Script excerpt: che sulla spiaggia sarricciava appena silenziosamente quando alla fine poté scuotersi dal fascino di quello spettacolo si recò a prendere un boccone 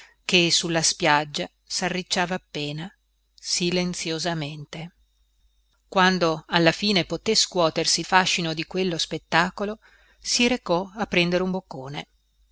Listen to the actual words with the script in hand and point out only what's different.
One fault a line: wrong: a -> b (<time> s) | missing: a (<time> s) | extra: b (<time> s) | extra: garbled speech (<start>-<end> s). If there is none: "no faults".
missing: dal (8.0 s)